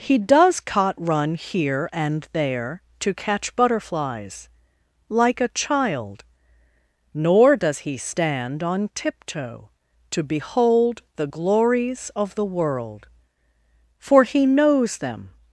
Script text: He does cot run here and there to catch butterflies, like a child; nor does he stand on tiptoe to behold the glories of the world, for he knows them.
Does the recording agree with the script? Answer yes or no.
yes